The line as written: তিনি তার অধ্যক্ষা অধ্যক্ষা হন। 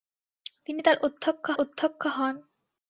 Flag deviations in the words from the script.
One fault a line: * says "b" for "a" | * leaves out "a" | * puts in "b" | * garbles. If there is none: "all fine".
all fine